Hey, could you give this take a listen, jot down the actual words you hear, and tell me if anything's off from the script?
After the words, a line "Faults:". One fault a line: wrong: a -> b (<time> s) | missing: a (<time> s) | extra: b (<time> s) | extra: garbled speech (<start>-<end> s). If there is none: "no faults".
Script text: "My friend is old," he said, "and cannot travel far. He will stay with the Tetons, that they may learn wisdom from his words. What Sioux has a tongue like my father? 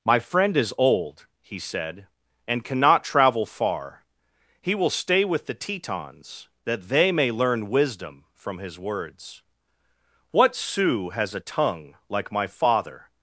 "My friend is old," he said, "and cannot travel far. He will stay with the Tetons, that they may learn wisdom from his words. What Sioux has a tongue like my father?
Faults:
no faults